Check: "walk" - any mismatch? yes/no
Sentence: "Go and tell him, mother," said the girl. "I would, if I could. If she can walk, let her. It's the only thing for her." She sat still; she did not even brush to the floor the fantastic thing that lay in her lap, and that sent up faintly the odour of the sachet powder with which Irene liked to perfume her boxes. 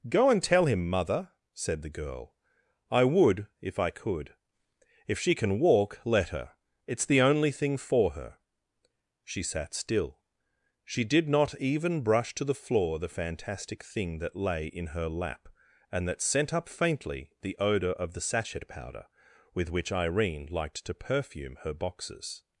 no